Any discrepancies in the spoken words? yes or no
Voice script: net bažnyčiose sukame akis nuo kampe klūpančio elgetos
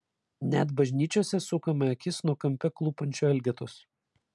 no